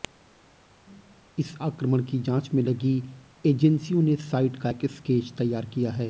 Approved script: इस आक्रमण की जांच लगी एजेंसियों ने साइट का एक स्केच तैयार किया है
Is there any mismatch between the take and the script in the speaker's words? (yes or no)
yes